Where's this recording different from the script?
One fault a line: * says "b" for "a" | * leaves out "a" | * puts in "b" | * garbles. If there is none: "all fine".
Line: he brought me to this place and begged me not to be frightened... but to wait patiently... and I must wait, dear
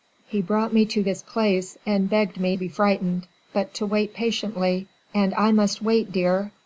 * leaves out "not to"